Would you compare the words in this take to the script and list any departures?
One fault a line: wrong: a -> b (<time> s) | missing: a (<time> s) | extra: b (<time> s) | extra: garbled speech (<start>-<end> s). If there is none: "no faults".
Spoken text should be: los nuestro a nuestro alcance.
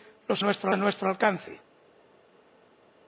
no faults